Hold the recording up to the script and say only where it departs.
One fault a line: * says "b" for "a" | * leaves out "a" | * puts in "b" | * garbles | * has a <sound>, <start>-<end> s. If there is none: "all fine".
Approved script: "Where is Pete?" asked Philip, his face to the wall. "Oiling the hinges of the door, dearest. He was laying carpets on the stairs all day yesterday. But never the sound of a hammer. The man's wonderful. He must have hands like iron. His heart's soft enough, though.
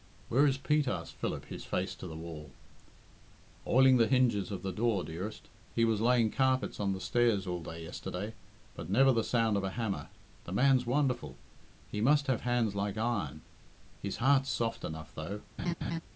* has a laugh, 15.6-16.0 s